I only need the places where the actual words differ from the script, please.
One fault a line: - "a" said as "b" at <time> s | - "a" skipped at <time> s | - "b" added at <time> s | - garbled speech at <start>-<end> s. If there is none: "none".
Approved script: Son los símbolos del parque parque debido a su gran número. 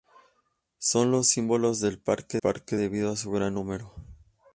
none